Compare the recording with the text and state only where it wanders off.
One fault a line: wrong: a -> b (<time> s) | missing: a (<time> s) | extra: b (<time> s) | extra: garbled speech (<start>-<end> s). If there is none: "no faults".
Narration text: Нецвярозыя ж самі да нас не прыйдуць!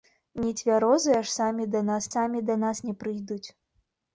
extra: самі да нас (2.1 s)